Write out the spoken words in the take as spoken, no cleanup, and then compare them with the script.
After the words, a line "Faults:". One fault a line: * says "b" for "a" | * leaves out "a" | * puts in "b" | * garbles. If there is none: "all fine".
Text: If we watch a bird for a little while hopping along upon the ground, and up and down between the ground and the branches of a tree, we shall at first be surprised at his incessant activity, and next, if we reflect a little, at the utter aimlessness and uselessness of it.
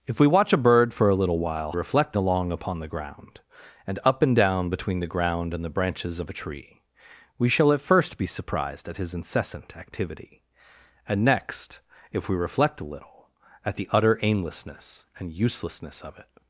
If we watch a bird for a little while reflect along upon the ground, and up and down between the ground and the branches of a tree, we shall at first be surprised at his incessant activity, and next, if we reflect a little, at the utter aimlessness and uselessness of it.
Faults:
* says "reflect" for "hopping"